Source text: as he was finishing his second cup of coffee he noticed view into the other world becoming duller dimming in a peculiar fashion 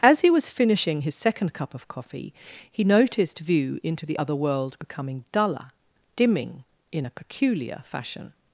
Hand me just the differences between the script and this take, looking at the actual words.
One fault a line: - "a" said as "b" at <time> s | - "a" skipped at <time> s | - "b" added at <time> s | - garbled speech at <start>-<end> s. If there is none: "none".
none